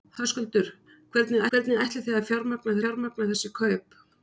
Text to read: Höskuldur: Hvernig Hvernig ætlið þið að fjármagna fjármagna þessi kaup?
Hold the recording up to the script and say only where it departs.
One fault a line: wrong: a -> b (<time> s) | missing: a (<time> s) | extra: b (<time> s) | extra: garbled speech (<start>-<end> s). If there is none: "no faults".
no faults